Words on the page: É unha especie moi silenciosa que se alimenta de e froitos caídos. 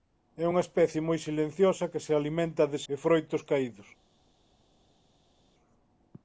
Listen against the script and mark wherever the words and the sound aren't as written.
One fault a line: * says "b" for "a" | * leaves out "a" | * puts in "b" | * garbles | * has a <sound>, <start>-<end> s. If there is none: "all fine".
all fine